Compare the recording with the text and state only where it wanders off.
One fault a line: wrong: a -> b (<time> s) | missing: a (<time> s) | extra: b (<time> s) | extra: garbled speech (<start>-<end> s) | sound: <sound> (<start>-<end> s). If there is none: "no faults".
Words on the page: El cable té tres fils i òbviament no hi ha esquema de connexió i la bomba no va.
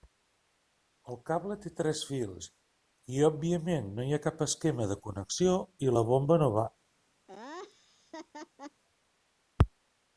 extra: cap (4.3 s)
sound: laugh (7.3-8.8 s)